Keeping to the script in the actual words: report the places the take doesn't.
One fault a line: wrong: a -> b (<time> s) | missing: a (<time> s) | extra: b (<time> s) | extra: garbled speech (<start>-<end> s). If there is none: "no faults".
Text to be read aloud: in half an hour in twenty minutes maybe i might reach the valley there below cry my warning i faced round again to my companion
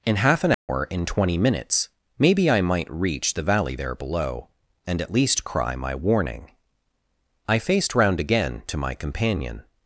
extra: and at least (4.8 s)